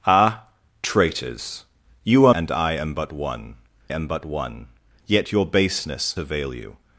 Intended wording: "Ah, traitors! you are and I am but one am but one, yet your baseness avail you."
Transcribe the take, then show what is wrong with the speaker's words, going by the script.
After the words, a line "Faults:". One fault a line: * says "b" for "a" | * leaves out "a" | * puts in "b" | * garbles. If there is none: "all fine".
"Ah, traitors! you are and I am but one am but one, yet your baseness avail you."
Faults:
all fine